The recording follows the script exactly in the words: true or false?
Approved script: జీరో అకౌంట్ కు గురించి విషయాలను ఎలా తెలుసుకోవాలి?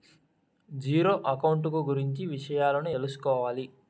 false